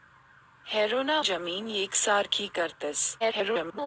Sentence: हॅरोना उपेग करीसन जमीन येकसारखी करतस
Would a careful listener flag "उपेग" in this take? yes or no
yes